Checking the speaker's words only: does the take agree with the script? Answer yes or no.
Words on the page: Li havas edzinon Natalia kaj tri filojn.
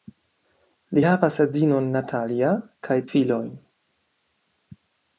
no